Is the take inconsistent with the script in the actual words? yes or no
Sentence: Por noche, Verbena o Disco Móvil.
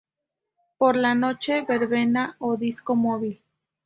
yes